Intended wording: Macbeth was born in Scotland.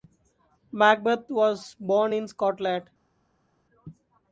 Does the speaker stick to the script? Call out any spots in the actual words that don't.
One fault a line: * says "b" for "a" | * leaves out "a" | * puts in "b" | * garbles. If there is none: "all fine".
all fine